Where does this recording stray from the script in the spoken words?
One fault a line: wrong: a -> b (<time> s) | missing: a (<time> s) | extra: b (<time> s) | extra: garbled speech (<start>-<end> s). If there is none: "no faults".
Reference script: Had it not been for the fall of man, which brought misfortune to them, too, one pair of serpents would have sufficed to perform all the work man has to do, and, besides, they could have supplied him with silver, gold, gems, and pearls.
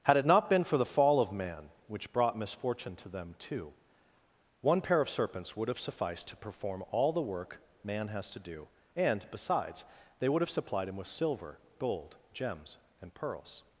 wrong: could -> would (10.3 s)